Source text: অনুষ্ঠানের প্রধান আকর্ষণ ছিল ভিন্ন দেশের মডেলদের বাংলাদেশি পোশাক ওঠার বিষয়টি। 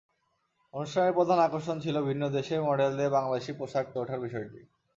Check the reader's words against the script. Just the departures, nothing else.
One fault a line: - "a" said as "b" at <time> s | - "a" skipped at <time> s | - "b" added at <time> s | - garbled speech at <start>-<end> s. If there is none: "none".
none